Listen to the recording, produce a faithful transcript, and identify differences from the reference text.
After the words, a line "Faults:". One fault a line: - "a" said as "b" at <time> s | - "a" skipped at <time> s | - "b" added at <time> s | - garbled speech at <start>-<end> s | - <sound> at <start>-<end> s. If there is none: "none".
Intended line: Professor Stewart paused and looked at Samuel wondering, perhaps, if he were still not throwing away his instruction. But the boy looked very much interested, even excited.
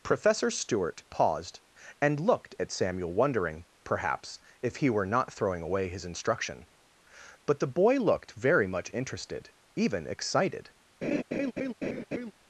Professor Stewart paused and looked at Samuel wondering, perhaps, if he were not throwing away his instruction. But the boy looked very much interested, even excited.
Faults:
- "still" skipped at 5.0 s
- laugh at 11.0-12.3 s